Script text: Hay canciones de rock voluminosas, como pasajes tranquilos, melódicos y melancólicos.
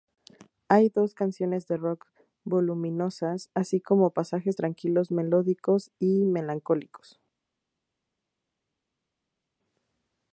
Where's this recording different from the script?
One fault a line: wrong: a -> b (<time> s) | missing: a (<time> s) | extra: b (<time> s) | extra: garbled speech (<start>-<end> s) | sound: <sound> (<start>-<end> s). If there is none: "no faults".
extra: dos (0.9 s)
extra: así (3.6 s)